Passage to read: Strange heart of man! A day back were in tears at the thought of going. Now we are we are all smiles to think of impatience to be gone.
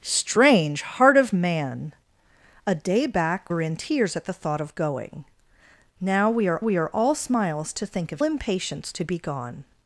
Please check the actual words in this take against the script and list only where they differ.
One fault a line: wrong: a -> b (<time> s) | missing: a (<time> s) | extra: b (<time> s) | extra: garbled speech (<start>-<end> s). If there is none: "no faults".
no faults